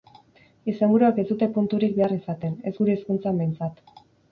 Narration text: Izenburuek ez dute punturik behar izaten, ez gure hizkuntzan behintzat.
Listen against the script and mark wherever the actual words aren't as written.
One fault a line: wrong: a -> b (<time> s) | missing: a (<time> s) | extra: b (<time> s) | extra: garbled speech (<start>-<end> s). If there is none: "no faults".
no faults